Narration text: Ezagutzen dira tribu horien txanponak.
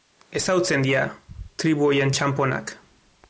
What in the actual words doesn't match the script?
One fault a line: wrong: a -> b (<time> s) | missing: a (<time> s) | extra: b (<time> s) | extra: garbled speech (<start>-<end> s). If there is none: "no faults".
no faults